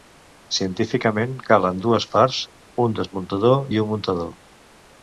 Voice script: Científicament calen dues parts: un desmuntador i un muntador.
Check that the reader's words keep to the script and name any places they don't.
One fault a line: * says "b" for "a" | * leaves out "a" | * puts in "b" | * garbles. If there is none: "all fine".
all fine